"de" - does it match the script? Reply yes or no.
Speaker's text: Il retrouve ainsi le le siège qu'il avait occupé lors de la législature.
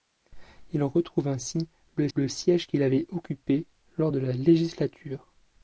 yes